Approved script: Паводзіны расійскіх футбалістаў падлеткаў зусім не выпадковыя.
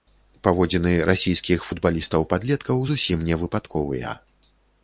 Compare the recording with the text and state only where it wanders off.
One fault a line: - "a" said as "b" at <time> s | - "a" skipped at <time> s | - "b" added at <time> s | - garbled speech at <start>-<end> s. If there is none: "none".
none